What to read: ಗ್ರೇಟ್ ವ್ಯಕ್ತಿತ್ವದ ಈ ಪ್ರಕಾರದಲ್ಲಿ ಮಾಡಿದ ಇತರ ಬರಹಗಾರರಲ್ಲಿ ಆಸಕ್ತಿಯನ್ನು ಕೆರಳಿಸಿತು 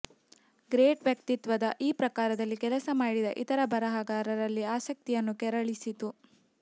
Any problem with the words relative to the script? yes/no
yes